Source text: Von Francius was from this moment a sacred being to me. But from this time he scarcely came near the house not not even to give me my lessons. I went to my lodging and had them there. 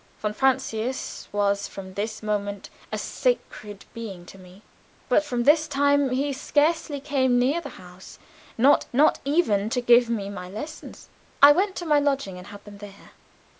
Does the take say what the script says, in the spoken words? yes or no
yes